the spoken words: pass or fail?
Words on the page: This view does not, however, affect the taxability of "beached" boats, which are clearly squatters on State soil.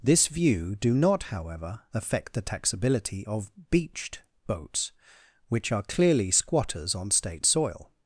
fail